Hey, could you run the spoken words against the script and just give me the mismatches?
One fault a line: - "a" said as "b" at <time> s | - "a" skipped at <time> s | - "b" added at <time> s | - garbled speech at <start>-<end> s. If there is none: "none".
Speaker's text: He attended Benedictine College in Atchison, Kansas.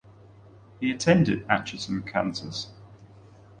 - "Benedictine College in" skipped at 1.5 s